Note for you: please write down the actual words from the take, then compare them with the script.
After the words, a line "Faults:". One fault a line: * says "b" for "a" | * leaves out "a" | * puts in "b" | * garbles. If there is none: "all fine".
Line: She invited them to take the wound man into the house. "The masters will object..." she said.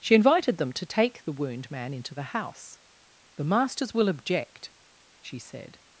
She invited them to take the wound man into the house. "The masters will object..." she said.
Faults:
all fine